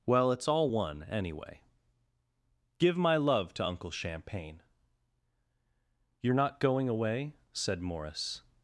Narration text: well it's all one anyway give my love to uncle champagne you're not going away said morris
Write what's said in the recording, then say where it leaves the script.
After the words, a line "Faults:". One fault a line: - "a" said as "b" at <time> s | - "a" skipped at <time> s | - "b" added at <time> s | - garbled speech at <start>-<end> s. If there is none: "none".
well it's all one anyway give my love to uncle champagne you're not going away said morris
Faults:
none